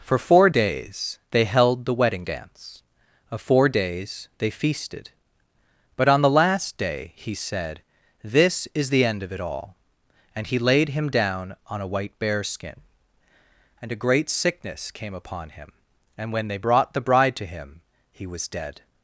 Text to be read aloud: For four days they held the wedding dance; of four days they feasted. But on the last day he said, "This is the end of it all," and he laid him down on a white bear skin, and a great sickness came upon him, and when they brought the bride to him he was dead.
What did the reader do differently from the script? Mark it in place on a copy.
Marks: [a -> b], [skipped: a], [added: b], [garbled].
For four days they held the wedding dance; of four days they feasted. But on the last day he said, "This is the end of it all," and he laid him down on a white bear skin, and a great sickness came upon him, and when they brought the bride to him he was dead.